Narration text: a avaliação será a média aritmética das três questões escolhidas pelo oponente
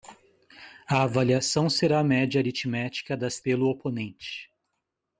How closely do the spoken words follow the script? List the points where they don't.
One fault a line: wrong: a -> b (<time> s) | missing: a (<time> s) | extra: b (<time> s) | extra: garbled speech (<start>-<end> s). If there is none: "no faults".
missing: três questões escolhidas (3.4 s)